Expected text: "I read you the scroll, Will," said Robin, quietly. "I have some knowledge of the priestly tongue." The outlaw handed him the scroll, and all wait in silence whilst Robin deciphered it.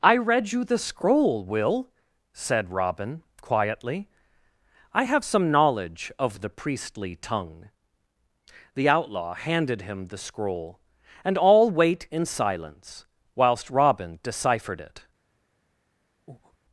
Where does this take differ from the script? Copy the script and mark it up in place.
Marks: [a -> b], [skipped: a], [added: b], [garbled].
"I read you the scroll, Will," said Robin, quietly. "I have some knowledge of the priestly tongue." The outlaw handed him the scroll, and all wait in silence whilst Robin deciphered it.